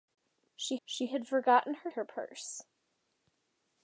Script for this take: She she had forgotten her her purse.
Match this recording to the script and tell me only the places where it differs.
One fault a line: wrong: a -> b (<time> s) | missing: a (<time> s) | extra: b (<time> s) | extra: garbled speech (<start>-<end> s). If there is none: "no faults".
no faults